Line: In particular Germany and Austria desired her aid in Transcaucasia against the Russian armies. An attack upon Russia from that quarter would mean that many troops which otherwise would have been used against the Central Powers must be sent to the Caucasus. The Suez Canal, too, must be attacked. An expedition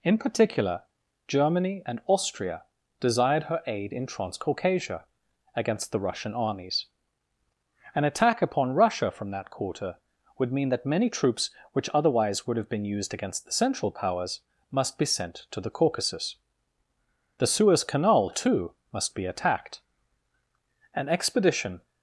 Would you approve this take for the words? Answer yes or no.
yes